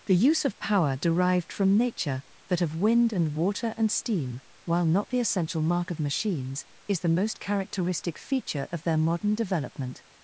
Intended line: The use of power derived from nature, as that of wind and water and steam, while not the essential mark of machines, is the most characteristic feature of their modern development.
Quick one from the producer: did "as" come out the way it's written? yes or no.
no